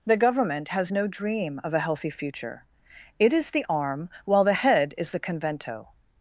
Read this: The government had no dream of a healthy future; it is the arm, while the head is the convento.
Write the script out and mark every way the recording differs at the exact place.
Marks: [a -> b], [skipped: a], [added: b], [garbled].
The government [had -> has] no dream of a healthy future; it is the arm, while the head is the convento.